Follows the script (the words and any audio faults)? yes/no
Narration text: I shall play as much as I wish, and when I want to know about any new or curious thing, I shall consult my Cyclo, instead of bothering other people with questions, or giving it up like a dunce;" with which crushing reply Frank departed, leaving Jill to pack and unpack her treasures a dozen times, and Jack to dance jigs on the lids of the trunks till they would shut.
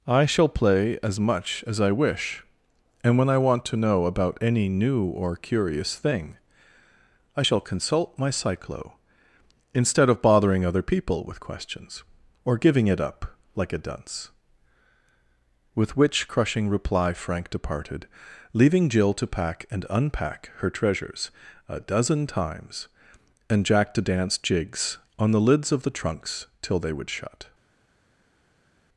yes